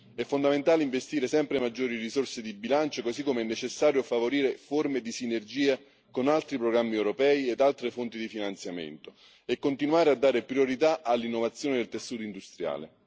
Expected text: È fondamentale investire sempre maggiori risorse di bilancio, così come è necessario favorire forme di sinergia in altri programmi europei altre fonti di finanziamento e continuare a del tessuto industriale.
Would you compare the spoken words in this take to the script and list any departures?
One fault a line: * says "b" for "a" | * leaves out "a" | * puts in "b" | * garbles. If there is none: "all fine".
* says "con" for "in"
* puts in "ed"
* puts in "dare priorità all'innovazione"